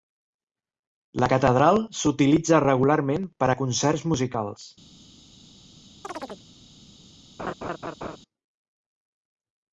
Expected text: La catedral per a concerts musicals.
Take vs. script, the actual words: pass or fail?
fail